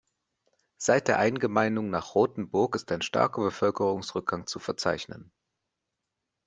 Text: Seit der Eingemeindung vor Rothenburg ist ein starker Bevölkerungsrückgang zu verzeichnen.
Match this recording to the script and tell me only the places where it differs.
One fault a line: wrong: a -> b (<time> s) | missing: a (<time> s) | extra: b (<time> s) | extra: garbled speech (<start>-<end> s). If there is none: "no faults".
wrong: vor -> nach (1.9 s)